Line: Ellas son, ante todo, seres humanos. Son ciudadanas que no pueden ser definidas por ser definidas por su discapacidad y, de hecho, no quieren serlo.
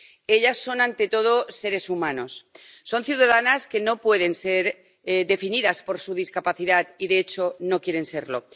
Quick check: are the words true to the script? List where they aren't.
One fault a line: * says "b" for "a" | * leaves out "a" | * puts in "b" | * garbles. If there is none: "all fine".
* leaves out "ser definidas por"